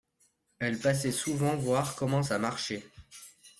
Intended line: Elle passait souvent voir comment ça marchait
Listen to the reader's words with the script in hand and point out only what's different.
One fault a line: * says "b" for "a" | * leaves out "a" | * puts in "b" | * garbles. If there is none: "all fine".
all fine